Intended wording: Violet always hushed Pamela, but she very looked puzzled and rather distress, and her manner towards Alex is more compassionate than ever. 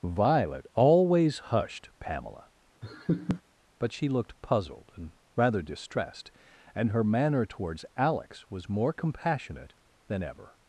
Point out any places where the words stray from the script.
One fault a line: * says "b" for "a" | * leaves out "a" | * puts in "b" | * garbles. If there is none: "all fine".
* leaves out "very"
* says "distressed" for "distress"
* says "was" for "is"